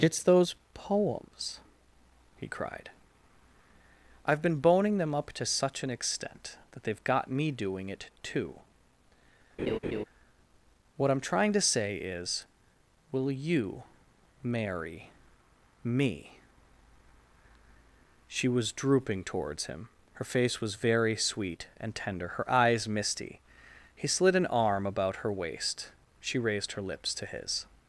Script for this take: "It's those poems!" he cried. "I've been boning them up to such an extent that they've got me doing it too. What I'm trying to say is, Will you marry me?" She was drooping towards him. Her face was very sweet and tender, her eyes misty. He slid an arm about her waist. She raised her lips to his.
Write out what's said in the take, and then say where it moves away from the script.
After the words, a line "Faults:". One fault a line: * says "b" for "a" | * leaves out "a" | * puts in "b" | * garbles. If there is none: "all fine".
"It's those poems!" he cried. "I've been boning them up to such an extent that they've got me doing it too. What I'm trying to say is, Will you marry me?" She was drooping towards him. Her face was very sweet and tender, her eyes misty. He slid an arm about her waist. She raised her lips to his.
Faults:
all fine